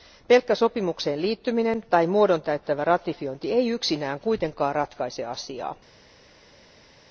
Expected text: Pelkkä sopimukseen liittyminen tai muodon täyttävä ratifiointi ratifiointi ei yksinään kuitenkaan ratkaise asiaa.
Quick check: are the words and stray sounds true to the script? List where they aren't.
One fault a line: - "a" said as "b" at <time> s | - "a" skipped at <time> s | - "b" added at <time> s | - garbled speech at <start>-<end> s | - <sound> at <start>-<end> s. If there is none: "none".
- "ratifiointi" skipped at 3.5 s